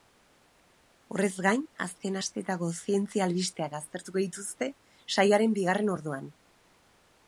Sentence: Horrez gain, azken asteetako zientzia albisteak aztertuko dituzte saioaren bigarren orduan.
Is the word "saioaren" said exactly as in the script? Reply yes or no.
yes